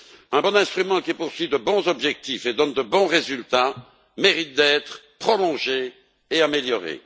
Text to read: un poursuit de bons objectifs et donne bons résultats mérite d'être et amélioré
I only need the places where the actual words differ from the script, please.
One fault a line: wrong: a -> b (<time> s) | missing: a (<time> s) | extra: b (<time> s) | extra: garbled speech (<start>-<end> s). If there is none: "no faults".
extra: bon instrument qui (0.4 s)
extra: de (2.7 s)
extra: prolongé (5.2 s)